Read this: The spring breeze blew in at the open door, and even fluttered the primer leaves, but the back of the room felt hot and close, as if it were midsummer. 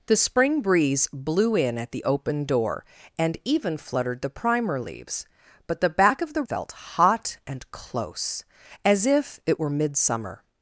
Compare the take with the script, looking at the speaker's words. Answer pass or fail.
fail